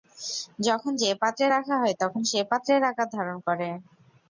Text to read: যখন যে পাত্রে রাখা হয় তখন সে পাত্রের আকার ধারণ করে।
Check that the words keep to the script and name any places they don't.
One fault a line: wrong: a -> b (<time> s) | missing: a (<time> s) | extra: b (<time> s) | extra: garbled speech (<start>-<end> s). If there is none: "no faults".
no faults